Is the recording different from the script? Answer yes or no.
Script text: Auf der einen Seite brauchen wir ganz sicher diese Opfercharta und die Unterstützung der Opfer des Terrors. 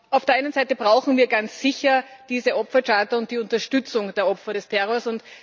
no